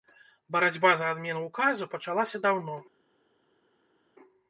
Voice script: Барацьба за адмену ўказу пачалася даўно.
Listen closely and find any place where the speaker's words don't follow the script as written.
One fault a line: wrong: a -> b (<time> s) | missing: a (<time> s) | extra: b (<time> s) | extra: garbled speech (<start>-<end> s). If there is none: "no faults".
no faults